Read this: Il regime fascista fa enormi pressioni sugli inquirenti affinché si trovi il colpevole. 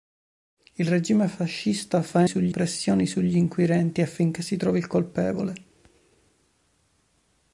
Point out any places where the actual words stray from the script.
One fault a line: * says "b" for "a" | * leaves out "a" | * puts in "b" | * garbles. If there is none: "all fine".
* says "sugli" for "enormi"